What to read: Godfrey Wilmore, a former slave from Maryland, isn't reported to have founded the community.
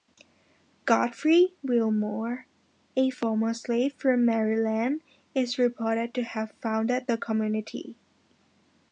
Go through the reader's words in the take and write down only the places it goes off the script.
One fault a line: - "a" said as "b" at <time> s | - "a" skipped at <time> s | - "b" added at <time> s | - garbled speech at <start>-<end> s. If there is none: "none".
- "isn't" said as "is" at 5.3 s